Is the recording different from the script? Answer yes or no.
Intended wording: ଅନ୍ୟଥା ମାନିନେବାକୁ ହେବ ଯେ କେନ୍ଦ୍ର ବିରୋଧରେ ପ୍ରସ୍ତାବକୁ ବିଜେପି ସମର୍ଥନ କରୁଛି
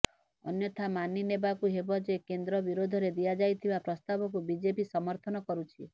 yes